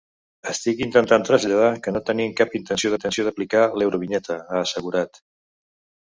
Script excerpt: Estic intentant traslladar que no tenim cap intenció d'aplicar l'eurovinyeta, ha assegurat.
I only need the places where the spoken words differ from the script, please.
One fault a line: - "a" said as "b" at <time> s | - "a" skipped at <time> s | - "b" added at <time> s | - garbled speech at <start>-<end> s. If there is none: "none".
- "intenció" added at 3.0 s